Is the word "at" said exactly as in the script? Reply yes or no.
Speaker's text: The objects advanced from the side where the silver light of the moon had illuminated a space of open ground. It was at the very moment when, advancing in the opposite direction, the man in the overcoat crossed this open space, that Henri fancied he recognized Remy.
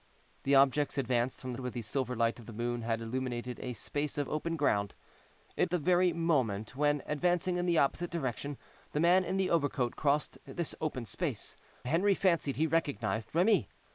no